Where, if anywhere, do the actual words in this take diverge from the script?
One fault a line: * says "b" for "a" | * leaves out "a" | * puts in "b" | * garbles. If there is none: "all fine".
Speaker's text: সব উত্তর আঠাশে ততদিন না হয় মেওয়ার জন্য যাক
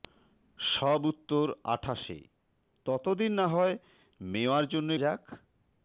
all fine